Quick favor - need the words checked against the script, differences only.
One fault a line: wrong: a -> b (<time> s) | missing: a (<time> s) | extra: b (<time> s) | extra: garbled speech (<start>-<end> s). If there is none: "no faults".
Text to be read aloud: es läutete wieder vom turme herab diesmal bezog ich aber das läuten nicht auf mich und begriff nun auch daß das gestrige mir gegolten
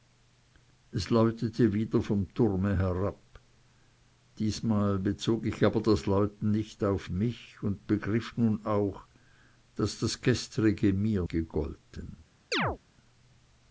no faults